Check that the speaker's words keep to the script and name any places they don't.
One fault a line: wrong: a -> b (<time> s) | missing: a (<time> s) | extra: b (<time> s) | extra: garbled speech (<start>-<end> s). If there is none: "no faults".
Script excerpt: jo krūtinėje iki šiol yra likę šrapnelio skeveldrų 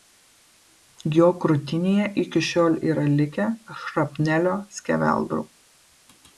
no faults